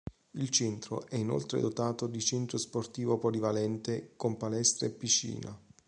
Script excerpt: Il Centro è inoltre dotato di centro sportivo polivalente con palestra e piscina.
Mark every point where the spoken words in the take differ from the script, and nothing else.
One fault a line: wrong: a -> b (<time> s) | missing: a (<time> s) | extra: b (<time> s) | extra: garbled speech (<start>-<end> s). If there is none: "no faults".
no faults